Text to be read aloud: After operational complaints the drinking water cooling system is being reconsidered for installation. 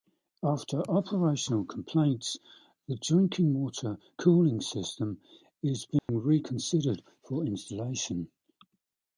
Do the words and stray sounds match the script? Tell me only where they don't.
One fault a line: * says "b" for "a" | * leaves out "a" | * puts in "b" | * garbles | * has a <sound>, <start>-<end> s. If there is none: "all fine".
* has a dropout, 6.0-6.1 s